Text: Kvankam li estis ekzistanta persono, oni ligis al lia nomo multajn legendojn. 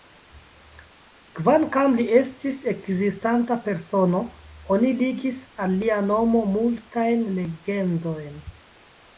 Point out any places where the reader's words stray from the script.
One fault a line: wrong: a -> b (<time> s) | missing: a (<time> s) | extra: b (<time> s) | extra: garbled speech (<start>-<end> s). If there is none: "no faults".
no faults